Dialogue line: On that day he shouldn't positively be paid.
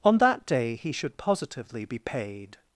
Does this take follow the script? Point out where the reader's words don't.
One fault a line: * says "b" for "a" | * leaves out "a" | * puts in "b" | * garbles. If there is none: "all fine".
* says "should" for "shouldn't"